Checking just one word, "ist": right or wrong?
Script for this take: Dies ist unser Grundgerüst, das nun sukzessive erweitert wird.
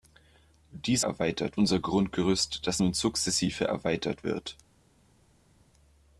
wrong